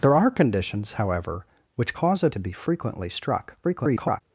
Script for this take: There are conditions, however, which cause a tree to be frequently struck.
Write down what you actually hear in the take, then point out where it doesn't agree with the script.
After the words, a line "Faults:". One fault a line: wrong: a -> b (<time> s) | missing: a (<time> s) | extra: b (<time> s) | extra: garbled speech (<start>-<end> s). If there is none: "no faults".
There are conditions, however, which cause a to be frequently struck. [garbled]
Faults:
missing: tree (2.3 s)
extra: garbled speech (3.6-4.2 s)